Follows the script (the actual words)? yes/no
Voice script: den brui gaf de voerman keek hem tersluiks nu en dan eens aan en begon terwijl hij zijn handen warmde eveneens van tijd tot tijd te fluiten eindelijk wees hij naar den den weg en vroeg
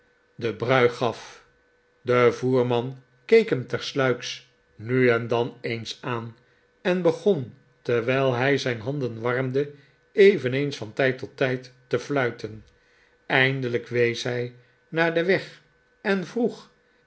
no